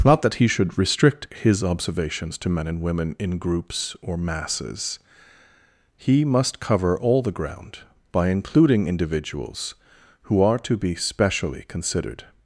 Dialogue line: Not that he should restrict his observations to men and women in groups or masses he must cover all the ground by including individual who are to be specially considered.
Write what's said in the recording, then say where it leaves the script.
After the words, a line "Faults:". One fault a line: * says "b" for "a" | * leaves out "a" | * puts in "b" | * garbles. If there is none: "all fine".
Not that he should restrict his observations to men and women in groups or masses he must cover all the ground by including individuals who are to be specially considered.
Faults:
* says "individuals" for "individual"